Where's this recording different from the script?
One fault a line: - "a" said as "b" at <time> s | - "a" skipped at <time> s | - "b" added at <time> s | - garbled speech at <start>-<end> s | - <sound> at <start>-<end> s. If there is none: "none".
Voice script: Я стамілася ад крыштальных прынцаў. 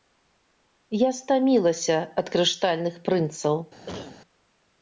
- cough at 3.9-4.2 s